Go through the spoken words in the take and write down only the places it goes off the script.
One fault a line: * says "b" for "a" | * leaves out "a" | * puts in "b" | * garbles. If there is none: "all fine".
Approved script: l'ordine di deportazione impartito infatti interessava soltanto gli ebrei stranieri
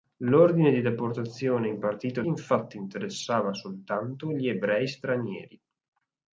all fine